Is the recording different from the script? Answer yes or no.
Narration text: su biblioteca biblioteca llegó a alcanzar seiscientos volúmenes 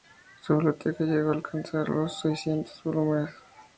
yes